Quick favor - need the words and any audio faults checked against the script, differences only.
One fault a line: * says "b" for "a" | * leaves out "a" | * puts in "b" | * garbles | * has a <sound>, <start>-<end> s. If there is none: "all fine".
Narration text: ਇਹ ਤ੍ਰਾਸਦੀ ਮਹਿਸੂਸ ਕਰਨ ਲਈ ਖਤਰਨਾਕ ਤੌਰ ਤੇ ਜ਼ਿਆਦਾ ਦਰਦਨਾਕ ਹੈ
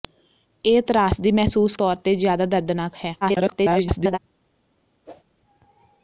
* leaves out "ਕਰਨ ਲਈ ਖਤਰਨਾਕ"
* garbles
* has a whoosh, 5.1-5.2 s